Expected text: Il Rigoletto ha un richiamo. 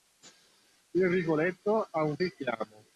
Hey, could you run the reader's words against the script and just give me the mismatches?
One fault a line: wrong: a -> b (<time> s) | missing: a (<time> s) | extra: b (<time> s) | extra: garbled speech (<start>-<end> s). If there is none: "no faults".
no faults